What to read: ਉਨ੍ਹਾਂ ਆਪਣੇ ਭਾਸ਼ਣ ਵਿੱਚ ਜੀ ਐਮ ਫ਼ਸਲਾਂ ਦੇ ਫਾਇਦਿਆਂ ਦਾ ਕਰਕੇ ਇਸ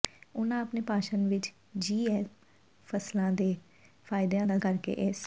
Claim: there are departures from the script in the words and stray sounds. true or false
false